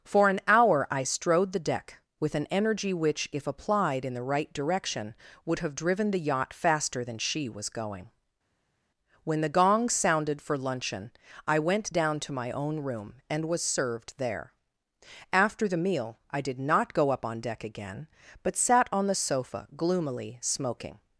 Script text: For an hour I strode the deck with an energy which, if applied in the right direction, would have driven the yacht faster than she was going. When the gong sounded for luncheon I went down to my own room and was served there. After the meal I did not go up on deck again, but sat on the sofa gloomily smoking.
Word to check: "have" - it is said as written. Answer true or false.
true